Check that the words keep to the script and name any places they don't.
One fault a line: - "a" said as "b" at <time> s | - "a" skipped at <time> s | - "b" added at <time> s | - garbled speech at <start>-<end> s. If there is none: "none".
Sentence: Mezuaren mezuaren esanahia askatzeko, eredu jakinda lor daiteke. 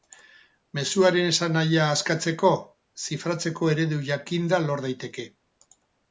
- "mezuaren" skipped at 1.3 s
- "zifratzeko" added at 3.0 s